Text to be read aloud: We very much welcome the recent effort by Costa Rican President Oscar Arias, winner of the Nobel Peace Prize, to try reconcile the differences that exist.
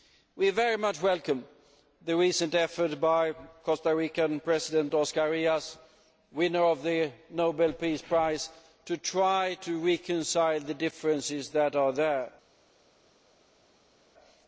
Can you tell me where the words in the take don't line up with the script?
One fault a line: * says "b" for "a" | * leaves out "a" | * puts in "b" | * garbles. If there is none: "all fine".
* puts in "to"